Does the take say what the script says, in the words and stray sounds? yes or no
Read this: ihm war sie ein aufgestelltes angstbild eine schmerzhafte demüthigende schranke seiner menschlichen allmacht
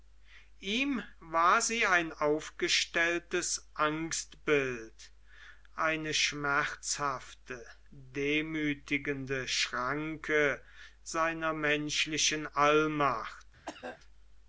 no